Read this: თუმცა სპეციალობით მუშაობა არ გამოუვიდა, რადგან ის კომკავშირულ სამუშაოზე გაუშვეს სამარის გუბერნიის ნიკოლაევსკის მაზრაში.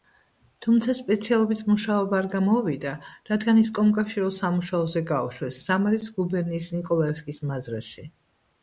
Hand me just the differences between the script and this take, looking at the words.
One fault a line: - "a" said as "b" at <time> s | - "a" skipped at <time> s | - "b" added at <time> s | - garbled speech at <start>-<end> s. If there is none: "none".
none